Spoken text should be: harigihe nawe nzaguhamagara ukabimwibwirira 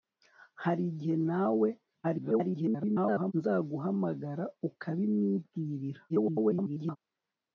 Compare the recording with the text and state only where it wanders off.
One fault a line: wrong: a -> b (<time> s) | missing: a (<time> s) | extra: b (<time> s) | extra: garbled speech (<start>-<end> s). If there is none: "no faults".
extra: garbled speech (2.0-3.3 s)
extra: garbled speech (6.1-7.0 s)